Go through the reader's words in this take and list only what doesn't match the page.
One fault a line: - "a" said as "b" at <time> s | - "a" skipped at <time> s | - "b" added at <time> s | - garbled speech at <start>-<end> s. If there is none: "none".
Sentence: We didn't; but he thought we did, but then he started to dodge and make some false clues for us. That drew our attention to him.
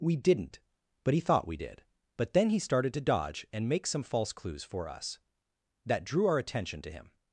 none